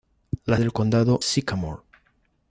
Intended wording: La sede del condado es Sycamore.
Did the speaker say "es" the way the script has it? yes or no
no